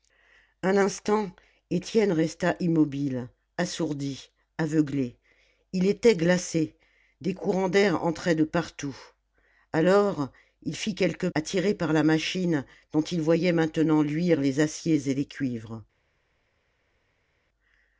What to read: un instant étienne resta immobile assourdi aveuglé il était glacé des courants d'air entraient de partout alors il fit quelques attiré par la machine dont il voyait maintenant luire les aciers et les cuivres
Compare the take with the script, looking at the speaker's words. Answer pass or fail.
pass